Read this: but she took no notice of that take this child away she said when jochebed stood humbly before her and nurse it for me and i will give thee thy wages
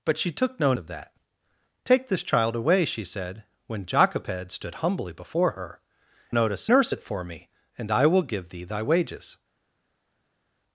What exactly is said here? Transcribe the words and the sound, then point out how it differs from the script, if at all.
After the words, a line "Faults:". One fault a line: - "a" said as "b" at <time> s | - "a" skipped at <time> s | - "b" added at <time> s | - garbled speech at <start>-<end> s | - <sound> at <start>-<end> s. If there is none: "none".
but she took no of that take this child away she said when jochebed stood humbly before her notice nurse it for me and i will give thee thy wages
Faults:
- "notice" skipped at 0.7 s
- "and" said as "notice" at 6.3 s